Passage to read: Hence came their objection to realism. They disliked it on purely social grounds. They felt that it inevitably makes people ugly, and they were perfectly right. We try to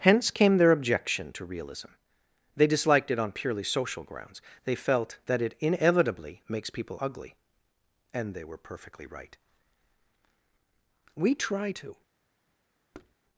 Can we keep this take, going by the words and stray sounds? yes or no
no